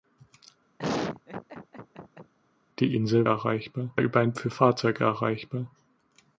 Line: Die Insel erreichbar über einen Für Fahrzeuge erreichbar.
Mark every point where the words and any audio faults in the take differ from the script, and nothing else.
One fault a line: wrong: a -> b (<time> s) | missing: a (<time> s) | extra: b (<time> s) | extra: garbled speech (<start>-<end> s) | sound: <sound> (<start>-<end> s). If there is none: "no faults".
sound: laugh (0.8-2.3 s)